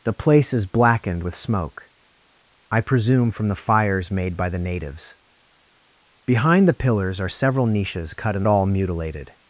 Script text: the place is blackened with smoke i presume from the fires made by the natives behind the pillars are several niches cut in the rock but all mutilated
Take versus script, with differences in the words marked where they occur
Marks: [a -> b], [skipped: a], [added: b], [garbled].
the place is blackened with smoke i presume from the fires made by the natives behind the pillars are several niches cut in [skipped: the rock but] all mutilated